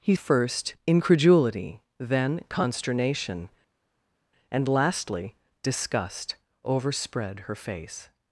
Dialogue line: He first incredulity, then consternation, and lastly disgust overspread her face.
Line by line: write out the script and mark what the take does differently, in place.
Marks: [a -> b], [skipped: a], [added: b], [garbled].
He first incredulity, then consternation, and lastly disgust overspread her face.